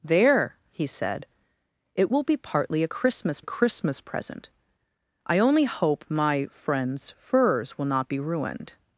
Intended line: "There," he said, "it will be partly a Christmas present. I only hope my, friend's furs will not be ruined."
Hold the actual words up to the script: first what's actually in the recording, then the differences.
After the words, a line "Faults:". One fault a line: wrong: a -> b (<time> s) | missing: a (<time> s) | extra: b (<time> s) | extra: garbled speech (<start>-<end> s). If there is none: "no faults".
"There," he said, "it will be partly a Christmas a Christmas present. I only hope my, friend's furs will not be ruined."
Faults:
extra: a Christmas (3.4 s)